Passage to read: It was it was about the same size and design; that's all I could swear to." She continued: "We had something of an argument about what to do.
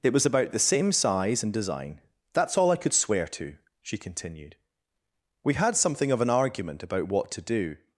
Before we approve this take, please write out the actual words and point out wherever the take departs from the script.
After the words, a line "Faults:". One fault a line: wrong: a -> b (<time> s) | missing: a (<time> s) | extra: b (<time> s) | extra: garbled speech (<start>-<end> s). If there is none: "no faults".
It was about the same size and design; that's all I could swear to." She continued: "We had something of an argument about what to do.
Faults:
missing: it was (0.2 s)